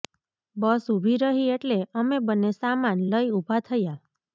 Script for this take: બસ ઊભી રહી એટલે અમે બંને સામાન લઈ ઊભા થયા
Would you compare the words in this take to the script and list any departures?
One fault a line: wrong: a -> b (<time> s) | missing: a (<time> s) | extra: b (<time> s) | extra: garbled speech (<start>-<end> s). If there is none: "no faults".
no faults